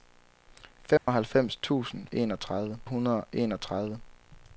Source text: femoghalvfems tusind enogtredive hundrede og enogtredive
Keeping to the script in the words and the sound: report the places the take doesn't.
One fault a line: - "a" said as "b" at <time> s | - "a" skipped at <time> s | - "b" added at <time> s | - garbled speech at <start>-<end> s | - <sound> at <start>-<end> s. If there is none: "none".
- dropout at 1.0-1.1 s